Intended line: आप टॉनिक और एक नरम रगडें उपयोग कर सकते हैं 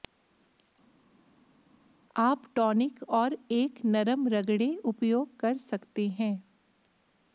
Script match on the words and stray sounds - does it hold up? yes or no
yes